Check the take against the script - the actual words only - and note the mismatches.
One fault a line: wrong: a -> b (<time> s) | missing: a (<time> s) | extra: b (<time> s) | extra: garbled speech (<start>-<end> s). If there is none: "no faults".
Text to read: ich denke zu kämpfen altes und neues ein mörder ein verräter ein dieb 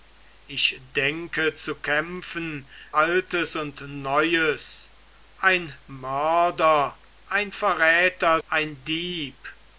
no faults